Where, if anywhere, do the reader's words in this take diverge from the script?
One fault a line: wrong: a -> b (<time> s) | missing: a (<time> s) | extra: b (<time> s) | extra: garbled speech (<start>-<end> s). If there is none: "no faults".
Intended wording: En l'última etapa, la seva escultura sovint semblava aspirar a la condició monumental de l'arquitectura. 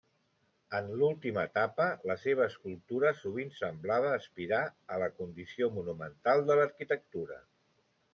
no faults